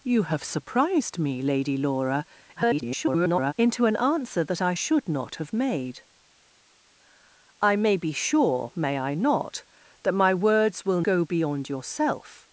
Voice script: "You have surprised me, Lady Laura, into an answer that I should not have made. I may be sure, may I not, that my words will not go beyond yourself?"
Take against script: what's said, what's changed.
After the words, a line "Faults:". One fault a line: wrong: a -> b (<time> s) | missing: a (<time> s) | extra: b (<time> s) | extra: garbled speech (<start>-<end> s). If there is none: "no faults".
"You have surprised me, Lady Laura, [garbled] into an answer that I should not have made. I may be sure, may I not, that my words will go beyond yourself?"
Faults:
extra: garbled speech (2.6-3.5 s)
missing: not (11.0 s)